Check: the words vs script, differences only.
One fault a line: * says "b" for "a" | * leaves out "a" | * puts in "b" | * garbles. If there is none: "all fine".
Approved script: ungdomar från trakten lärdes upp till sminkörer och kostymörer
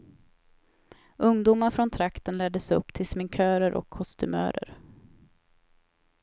all fine